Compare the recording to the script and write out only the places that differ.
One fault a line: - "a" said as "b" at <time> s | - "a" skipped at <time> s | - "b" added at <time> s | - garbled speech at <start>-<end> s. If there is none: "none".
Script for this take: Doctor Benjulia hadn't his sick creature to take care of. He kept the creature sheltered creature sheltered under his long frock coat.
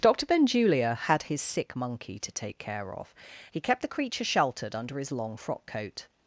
- "hadn't" said as "had" at 1.0 s
- "creature" said as "monkey" at 1.8 s
- "creature sheltered" skipped at 4.7 s